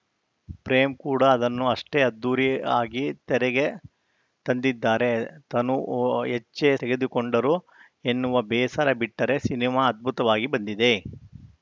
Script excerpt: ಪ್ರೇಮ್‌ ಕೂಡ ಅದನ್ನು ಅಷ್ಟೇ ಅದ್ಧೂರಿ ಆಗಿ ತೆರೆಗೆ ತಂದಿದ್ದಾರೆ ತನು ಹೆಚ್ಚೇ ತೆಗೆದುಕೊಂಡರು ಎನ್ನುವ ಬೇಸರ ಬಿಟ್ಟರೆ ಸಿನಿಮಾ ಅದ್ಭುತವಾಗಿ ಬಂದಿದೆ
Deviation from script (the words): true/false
false